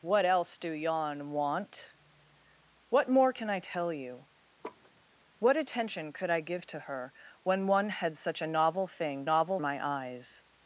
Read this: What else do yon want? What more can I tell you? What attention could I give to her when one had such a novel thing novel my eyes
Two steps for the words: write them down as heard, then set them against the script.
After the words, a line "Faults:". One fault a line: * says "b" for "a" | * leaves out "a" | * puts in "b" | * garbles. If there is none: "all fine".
What else do yon want? What more can I tell you? What attention could I give to her when one had such a novel thing novel my eyes
Faults:
all fine